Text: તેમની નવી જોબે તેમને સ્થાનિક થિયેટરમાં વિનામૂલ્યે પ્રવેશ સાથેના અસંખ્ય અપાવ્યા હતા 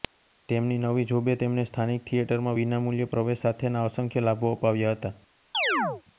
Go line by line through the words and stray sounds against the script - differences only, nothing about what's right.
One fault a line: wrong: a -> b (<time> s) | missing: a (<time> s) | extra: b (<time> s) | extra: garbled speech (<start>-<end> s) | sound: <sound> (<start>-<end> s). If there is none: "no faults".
extra: લાભો (4.3 s)
sound: chirp (5.5-6.0 s)